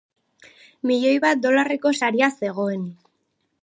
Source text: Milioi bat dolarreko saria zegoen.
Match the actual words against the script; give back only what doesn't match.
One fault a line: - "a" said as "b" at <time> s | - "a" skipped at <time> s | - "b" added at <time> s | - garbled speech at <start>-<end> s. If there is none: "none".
none